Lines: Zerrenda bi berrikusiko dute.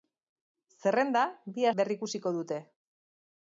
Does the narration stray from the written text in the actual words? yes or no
no